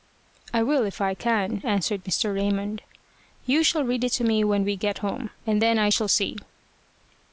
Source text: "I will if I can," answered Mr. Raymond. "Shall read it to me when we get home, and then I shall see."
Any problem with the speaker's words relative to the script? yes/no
yes